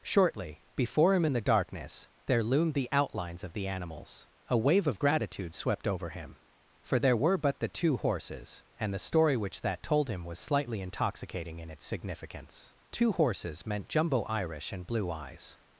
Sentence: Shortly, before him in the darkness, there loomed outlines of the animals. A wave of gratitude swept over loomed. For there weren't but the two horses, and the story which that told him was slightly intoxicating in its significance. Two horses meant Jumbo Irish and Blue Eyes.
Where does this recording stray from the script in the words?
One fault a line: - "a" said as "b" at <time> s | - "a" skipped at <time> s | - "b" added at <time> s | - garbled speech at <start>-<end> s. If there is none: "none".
- "the" added at 2.7 s
- "loomed" said as "him" at 6.1 s
- "weren't" said as "were" at 7.2 s